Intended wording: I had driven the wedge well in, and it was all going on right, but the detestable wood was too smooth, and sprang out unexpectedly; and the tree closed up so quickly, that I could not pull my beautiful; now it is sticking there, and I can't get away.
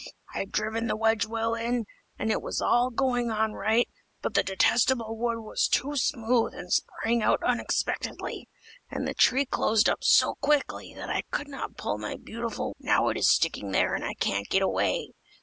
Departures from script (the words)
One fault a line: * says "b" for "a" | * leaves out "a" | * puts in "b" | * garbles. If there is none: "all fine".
all fine